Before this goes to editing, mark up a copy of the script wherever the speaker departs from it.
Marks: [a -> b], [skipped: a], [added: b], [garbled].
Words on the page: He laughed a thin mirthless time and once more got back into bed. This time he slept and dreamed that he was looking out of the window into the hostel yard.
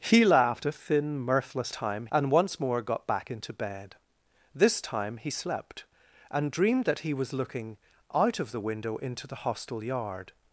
He laughed a thin mirthless time and once more got back into bed. This time he slept and dreamed that he was looking out of the window into the hostel yard.